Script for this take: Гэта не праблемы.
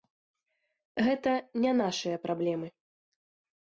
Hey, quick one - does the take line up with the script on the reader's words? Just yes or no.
no